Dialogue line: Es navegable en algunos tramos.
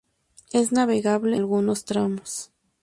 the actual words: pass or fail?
fail